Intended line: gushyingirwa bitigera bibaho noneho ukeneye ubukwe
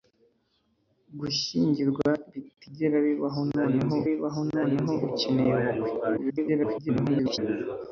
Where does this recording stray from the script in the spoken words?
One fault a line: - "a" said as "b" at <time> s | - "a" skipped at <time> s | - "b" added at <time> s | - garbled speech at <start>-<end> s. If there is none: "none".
- "bibaho noneho" added at 4.1 s
- garbled speech at 6.2-7.4 s